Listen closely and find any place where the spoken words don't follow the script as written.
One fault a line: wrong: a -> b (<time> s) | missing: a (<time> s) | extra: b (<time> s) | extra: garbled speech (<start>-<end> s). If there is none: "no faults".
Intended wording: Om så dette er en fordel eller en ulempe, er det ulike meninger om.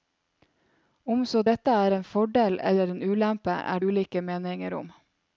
missing: det (3.8 s)